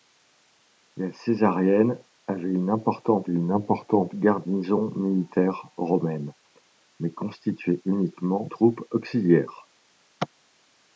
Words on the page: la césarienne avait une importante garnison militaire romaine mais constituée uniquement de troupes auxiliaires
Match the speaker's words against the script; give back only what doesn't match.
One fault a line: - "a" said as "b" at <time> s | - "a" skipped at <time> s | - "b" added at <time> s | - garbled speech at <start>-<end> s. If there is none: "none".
- "une importante" added at 3.3 s
- "de" skipped at 8.5 s